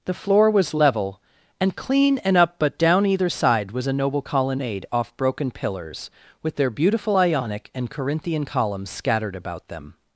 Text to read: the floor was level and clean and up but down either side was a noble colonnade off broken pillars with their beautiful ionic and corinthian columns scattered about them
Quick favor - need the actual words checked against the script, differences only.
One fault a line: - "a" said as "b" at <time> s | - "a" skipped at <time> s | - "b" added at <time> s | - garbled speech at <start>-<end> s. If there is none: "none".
none